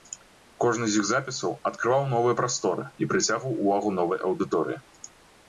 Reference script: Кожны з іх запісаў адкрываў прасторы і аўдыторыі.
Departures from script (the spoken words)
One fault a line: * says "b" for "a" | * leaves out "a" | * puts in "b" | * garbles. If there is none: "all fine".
* puts in "новыя"
* puts in "прыцягваў увагу новай"